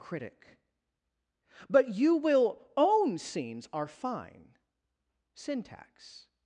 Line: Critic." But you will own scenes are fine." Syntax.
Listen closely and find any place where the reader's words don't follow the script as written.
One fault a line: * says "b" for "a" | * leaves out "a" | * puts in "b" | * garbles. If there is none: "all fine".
all fine